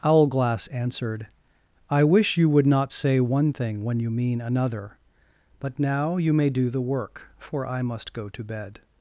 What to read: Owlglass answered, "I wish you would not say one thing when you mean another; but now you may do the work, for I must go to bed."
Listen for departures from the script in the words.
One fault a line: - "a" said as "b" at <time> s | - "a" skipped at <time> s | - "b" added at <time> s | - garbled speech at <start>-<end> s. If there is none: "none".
none